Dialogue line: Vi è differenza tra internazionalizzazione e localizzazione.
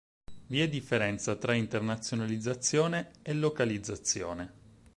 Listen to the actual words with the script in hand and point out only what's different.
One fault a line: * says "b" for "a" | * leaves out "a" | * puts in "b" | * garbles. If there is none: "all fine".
all fine